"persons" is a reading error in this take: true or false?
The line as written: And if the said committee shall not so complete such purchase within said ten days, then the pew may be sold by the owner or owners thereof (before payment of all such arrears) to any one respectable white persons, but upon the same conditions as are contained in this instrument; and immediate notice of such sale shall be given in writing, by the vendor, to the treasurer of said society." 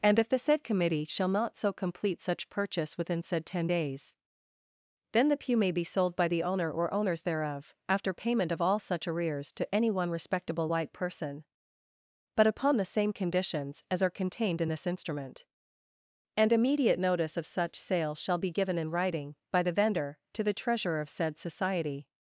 true